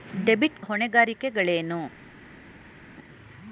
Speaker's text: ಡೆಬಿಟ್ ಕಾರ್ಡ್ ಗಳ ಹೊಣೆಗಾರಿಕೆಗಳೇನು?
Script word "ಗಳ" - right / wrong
wrong